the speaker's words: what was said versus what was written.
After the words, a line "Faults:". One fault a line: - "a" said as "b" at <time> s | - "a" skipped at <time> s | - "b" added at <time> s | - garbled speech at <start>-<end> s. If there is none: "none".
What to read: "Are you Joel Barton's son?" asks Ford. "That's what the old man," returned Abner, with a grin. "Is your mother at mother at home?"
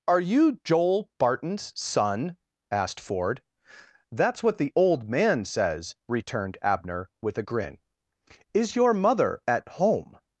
"Are you Joel Barton's son?" asked Ford. "That's what the old man says," returned Abner, with a grin. "Is your mother at home?"
Faults:
- "asks" said as "asked" at 2.7 s
- "says" added at 5.5 s
- "mother at" skipped at 9.7 s